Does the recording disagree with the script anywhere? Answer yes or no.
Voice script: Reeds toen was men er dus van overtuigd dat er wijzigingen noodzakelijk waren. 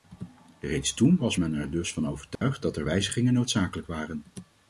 no